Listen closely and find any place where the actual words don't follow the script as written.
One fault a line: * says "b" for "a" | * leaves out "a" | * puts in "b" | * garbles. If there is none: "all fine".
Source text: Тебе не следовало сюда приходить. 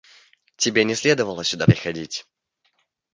all fine